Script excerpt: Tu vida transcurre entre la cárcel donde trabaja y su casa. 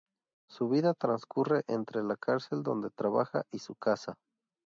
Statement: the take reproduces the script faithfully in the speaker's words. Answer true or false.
false